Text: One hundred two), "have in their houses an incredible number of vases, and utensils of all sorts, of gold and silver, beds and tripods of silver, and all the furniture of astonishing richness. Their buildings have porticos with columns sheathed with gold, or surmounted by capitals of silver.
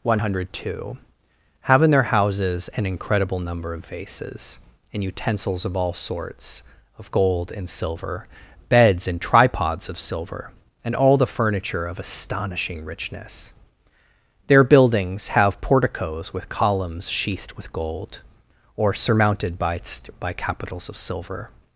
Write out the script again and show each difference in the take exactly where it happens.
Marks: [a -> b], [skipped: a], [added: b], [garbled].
One hundred two), "have in their houses an incredible number of vases, and utensils of all sorts, of gold and silver, beds and tripods of silver, and all the furniture of astonishing richness. Their buildings have porticos with columns sheathed with gold, or surmounted by [added: by] capitals of silver.